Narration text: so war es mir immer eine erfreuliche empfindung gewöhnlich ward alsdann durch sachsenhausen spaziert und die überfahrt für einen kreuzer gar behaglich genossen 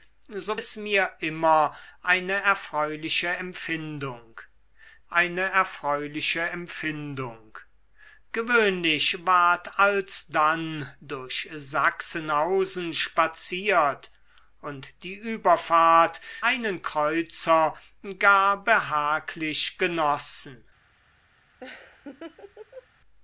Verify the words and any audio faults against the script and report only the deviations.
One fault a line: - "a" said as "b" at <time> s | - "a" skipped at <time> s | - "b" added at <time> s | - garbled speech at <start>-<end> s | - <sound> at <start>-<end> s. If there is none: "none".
- "war" skipped at 0.6 s
- "eine erfreuliche empfindung" added at 5.1 s
- "für" skipped at 16.2 s
- laugh at 21.6-22.9 s